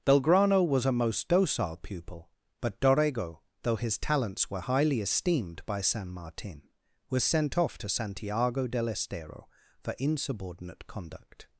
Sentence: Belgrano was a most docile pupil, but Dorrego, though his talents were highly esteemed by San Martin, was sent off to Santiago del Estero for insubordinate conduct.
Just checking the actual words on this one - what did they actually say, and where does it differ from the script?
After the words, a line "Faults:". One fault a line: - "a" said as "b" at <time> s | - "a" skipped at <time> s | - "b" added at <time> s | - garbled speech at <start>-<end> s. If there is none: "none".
Belgrano was a most docile pupil, but Dorrego, though his talents were highly esteemed by San Martin, was sent off to Santiago del Estero for insubordinate conduct.
Faults:
none